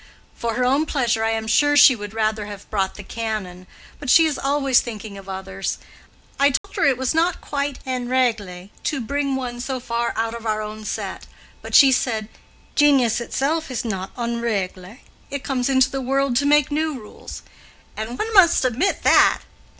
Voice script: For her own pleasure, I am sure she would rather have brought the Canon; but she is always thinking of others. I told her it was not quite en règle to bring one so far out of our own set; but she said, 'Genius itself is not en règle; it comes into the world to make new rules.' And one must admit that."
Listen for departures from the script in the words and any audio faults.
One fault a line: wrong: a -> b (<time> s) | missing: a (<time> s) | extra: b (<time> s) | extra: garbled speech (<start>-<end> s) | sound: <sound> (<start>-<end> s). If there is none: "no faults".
sound: dropout (6.6-6.6 s)